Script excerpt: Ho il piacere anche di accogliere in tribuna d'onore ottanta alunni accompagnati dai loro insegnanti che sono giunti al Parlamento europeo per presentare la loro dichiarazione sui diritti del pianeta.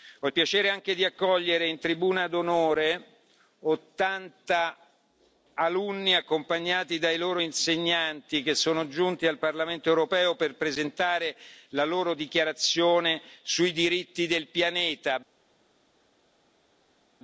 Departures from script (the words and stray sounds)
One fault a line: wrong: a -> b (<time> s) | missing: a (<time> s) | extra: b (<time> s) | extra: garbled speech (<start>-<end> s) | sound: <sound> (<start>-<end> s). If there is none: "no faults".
no faults